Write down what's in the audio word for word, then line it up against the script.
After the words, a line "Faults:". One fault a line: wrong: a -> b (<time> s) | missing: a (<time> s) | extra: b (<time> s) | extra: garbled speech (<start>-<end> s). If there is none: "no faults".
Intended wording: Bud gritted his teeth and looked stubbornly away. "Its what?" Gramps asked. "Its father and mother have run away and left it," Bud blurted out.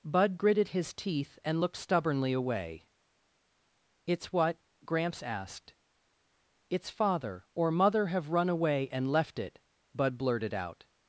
Bud gritted his teeth and looked stubbornly away. "Its what?" Gramps asked. "Its father or mother have run away and left it," Bud blurted out.
Faults:
wrong: and -> or (7.5 s)